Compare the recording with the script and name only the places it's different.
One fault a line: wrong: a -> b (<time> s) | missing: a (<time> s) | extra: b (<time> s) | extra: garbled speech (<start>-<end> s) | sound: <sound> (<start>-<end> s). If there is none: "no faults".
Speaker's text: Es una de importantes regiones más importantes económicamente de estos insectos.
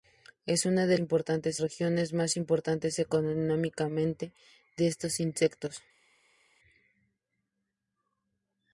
no faults